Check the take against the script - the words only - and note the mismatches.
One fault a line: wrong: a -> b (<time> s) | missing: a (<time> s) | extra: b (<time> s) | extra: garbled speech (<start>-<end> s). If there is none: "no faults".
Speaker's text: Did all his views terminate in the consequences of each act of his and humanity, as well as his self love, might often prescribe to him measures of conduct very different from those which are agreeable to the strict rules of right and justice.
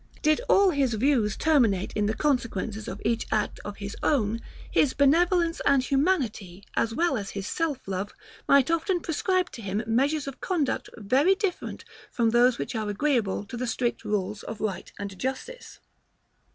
extra: own his benevolence (4.0 s)